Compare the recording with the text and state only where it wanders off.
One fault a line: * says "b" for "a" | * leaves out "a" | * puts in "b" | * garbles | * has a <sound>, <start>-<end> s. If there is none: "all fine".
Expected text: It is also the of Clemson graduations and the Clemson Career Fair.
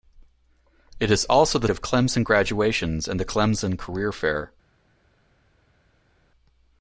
all fine